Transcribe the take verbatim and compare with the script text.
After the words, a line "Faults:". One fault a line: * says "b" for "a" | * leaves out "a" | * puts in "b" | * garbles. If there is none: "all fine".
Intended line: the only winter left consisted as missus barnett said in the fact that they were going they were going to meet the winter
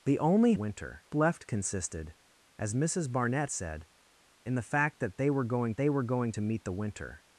the only winter left consisted as missus barnett said in the fact that they were going they were going to meet the winter
Faults:
all fine